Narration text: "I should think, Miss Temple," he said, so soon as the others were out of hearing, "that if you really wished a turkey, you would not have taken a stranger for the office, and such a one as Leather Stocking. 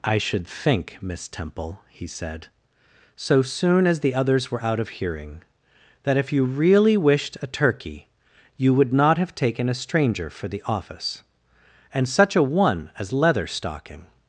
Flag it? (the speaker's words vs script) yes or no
no